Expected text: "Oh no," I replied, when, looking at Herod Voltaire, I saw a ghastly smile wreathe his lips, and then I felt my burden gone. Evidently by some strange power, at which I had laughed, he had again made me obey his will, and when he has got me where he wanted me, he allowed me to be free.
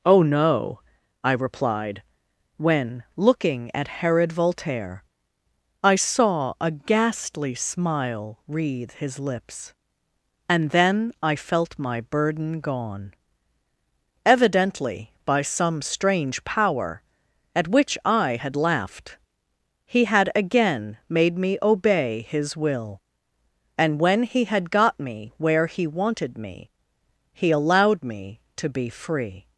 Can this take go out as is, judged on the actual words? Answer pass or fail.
fail